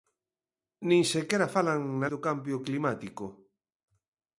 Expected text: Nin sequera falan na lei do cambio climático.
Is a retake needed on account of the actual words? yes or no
yes